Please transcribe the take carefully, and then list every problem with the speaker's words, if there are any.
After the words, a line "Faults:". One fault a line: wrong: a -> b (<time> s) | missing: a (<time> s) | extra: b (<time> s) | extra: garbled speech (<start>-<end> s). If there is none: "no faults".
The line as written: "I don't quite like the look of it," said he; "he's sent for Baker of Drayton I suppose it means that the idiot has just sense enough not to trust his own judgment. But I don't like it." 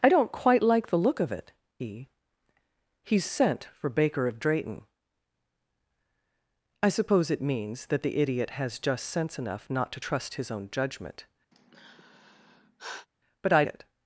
"I don't quite like the look of it," he; "he's sent for Baker of Drayton I suppose it means that the idiot has just sense enough not to trust his own judgment. But I it."
Faults:
missing: said (1.5 s)
missing: don't like (13.6 s)